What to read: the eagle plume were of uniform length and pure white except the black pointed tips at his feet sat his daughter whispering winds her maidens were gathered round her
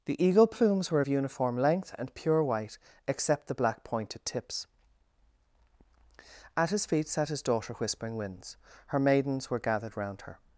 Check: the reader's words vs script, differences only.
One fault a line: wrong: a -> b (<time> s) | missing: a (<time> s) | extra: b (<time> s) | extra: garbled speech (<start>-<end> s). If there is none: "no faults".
wrong: plume -> plumes (0.5 s)